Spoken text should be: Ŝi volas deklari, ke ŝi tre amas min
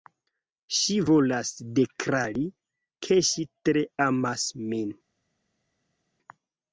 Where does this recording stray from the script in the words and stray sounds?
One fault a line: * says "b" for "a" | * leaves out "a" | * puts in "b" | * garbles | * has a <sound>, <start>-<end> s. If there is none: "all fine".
all fine